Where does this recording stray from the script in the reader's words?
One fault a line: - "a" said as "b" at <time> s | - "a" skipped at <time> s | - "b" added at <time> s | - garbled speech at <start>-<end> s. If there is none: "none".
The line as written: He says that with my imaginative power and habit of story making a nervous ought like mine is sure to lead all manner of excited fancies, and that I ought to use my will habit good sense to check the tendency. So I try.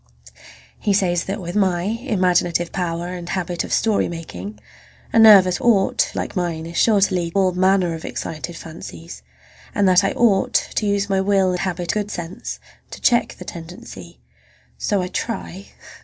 none